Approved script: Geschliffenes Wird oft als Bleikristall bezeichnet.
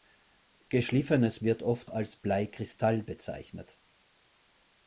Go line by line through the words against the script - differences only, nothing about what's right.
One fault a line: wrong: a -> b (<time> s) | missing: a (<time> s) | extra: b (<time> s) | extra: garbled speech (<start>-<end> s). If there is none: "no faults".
no faults